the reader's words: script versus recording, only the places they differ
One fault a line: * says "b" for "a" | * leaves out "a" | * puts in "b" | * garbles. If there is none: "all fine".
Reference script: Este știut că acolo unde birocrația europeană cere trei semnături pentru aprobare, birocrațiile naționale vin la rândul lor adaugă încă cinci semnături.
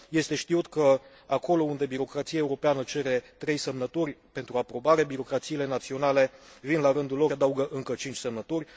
all fine